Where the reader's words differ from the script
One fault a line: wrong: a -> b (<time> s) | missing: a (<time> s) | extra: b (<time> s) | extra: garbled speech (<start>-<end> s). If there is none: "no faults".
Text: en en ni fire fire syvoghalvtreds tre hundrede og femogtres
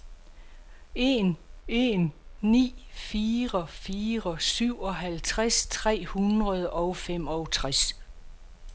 no faults